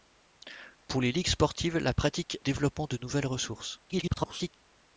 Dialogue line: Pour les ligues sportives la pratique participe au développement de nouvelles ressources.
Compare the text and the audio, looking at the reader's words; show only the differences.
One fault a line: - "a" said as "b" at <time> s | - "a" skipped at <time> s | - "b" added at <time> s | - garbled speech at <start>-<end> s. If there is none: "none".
- "participe au" skipped at 2.4 s
- garbled speech at 3.9-4.5 s